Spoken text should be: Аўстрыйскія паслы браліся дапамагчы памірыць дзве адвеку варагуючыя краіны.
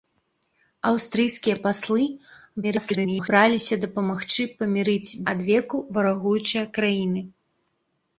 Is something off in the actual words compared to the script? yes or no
yes